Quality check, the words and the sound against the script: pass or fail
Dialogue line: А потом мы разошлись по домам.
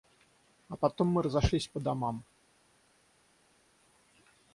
pass